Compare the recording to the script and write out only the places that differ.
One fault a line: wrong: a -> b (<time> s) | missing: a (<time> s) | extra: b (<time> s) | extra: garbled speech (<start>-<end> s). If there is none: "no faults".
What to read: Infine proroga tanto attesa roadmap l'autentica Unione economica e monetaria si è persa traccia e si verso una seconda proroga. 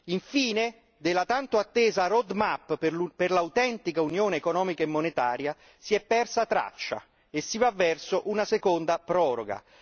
wrong: proroga -> della (1.0 s)
extra: per (2.8 s)
extra: va (7.6 s)